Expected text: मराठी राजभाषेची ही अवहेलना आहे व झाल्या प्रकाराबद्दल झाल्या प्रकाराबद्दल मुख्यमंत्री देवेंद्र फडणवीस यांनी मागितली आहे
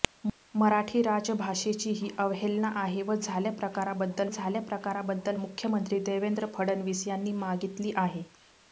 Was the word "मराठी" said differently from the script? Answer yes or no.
no